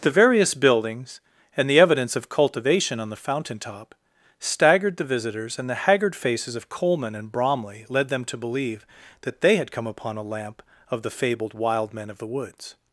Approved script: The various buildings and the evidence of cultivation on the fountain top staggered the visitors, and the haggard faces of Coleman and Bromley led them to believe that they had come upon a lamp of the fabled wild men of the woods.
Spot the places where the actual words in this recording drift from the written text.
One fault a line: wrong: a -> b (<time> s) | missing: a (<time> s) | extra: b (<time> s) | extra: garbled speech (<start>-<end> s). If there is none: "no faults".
no faults